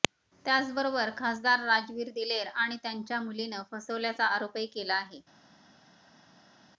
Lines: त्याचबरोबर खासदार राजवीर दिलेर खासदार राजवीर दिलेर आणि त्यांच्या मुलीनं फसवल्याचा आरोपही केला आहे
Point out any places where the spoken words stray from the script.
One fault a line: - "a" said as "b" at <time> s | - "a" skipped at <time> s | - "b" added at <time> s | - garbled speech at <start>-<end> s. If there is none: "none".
- "खासदार राजवीर दिलेर" skipped at 2.5 s